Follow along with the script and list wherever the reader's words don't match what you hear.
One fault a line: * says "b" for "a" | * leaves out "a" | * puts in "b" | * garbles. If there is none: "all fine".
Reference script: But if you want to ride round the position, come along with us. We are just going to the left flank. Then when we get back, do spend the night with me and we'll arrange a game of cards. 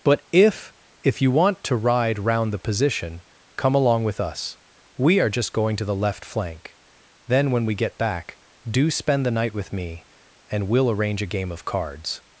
* puts in "if"